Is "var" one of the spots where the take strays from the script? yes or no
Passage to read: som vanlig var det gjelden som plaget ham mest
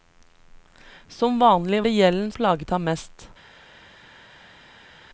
yes